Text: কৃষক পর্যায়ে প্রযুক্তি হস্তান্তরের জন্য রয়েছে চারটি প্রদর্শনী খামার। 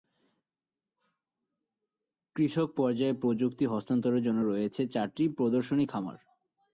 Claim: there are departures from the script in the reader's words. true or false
false